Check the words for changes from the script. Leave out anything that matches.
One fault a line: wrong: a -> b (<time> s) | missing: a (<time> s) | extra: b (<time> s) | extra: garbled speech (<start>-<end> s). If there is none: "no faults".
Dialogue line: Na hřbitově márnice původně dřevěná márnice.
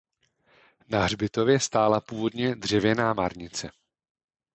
wrong: márnice -> stála (1.6 s)